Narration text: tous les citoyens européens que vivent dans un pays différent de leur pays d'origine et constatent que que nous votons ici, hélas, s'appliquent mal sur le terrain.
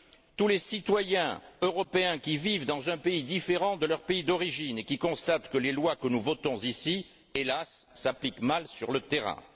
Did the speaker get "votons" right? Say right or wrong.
right